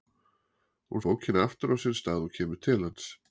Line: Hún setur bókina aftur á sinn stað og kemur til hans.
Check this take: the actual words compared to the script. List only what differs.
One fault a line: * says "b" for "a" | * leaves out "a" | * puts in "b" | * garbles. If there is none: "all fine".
* leaves out "setur"